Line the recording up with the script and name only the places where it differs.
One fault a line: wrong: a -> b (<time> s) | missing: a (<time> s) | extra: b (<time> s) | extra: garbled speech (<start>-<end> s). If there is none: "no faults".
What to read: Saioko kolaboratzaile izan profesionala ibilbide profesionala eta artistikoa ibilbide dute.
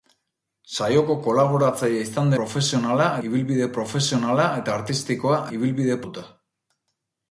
no faults